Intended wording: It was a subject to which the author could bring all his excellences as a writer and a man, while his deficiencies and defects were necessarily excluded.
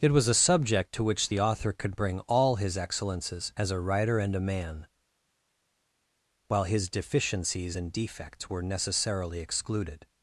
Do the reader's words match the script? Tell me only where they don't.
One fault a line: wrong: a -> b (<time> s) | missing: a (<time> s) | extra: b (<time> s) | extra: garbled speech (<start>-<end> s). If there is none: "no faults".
no faults